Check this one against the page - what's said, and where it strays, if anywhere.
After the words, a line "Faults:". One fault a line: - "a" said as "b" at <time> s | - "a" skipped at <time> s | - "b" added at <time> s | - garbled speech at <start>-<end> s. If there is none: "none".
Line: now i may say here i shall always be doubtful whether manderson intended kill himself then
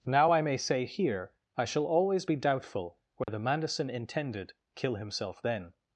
now i may say here i shall always be doubtful whether manderson intended kill himself then
Faults:
none